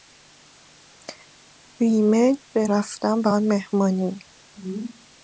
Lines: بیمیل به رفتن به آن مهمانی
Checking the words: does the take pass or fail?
pass